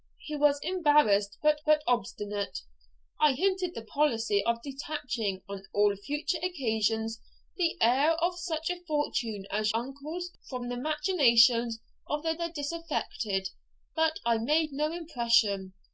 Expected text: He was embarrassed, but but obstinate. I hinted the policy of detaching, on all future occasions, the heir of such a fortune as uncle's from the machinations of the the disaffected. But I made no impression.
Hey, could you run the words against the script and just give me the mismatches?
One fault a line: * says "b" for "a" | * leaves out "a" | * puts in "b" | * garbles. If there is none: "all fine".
all fine